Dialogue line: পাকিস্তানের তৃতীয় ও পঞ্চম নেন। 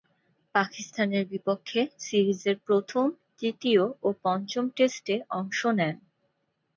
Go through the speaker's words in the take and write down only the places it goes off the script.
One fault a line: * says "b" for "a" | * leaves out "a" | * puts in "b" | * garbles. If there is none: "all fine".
* puts in "বিপক্ষে সিরিজের প্রথম"
* puts in "টেস্টে অংশ"